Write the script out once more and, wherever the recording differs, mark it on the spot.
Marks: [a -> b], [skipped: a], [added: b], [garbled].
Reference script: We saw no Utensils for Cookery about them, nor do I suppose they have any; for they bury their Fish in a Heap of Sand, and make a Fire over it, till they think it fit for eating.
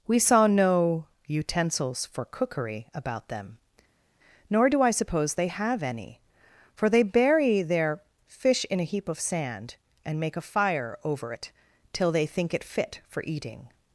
We saw no Utensils for Cookery about them, nor do I suppose they have any; for they bury their Fish in a Heap of Sand, and make a Fire over it, till they think it fit for eating.